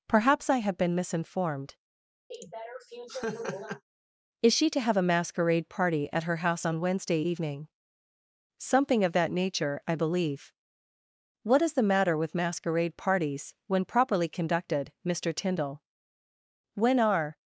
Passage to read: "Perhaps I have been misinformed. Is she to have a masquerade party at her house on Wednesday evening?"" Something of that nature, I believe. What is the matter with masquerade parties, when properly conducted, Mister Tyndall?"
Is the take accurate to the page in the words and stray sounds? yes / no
no